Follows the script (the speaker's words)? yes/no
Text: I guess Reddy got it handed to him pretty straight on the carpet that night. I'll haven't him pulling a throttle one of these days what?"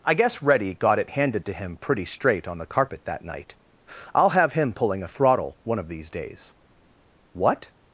no